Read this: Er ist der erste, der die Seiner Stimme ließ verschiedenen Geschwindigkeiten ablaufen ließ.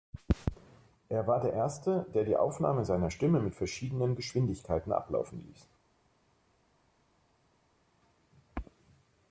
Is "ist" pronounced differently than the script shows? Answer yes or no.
yes